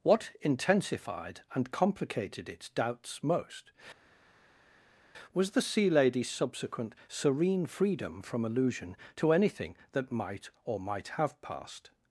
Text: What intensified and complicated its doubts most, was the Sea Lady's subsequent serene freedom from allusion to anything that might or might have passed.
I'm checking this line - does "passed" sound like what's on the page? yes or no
yes